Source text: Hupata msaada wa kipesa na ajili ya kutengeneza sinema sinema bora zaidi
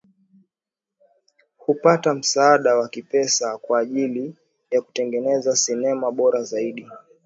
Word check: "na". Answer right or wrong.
wrong